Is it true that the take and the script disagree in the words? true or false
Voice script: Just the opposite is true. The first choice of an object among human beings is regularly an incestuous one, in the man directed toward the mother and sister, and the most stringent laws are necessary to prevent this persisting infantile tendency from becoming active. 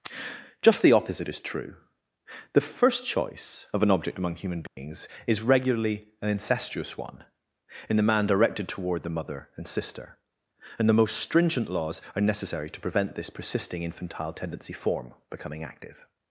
true